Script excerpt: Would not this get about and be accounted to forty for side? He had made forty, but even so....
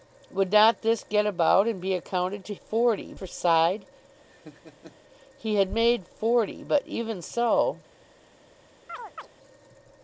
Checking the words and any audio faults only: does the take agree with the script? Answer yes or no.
no